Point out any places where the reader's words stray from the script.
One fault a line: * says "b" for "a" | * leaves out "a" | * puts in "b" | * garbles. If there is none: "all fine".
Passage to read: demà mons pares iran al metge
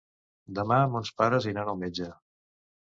all fine